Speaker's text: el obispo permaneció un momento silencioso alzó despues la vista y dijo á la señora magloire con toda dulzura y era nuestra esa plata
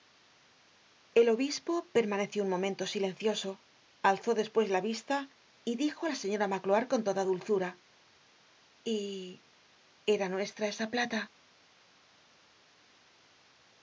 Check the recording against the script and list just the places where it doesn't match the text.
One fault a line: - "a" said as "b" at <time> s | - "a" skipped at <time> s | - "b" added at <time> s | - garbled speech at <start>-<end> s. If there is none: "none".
none